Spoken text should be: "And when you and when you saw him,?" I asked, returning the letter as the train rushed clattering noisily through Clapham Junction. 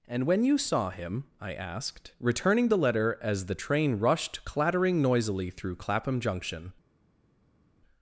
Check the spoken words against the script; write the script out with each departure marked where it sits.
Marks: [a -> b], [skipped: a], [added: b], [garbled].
"And when you [skipped: and when you] saw him,?" I asked, returning the letter as the train rushed clattering noisily through Clapham Junction.